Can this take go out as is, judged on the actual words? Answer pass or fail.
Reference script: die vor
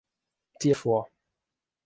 pass